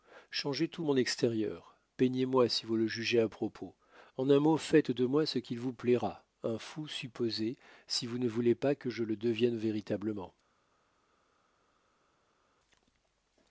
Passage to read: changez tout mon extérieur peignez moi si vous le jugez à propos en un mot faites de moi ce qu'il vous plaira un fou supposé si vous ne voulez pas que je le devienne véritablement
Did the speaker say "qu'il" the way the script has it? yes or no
yes